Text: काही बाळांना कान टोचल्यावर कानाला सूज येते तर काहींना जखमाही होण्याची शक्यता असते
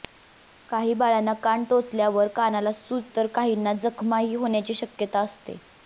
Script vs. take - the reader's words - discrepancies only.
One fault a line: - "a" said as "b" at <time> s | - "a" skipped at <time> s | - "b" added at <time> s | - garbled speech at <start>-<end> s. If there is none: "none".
- "येते" skipped at 3.1 s